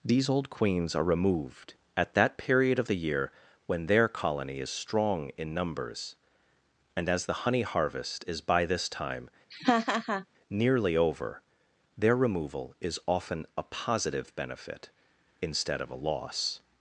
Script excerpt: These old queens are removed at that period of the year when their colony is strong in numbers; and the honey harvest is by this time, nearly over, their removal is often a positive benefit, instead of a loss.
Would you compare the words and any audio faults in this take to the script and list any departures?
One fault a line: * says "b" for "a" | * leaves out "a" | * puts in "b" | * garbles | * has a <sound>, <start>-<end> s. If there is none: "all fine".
* puts in "as"
* has a laugh, 9.5-10.3 s